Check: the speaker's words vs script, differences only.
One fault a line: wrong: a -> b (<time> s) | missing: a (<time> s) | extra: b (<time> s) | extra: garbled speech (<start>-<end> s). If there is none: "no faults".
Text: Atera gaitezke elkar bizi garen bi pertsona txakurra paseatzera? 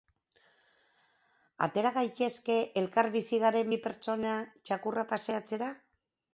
no faults